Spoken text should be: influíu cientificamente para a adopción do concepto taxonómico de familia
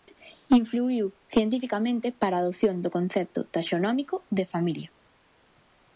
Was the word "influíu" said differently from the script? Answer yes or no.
no